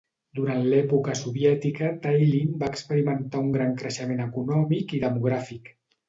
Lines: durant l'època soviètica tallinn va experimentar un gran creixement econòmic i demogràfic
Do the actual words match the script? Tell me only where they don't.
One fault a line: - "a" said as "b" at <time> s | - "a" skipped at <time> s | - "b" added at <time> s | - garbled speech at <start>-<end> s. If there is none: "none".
none